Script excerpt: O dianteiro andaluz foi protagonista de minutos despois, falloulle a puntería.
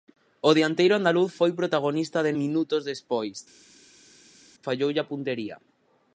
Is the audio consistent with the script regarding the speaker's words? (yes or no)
yes